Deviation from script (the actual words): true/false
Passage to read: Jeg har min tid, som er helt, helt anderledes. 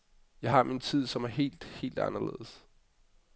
false